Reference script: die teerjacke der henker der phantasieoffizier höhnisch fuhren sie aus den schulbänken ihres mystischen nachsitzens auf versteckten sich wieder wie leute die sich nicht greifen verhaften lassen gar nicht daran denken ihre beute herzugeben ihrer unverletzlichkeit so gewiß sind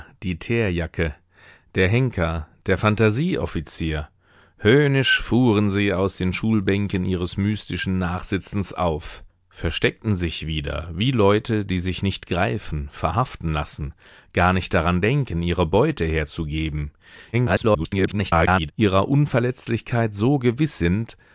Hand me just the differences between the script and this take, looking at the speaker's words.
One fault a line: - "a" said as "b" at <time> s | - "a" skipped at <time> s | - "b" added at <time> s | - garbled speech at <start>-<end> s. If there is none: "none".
- garbled speech at 17.3-18.7 s